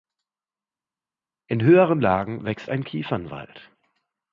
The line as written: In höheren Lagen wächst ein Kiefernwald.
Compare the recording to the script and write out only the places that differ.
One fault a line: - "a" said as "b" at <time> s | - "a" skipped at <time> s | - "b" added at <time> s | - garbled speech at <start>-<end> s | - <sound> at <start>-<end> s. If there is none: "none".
none